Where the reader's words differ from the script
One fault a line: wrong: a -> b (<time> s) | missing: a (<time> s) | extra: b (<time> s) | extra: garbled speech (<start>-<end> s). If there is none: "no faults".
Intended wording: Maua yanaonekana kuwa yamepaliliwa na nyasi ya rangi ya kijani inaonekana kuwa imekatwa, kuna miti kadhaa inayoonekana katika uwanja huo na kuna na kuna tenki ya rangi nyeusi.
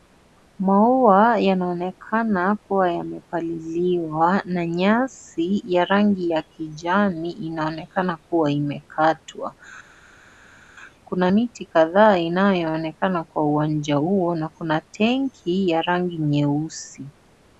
wrong: katika -> kwa (13.2 s)
missing: na kuna (14.8 s)